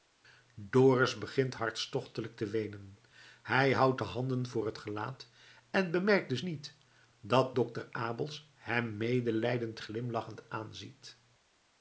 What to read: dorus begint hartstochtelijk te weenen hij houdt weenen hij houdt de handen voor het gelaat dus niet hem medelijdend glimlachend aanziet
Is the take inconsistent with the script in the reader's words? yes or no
yes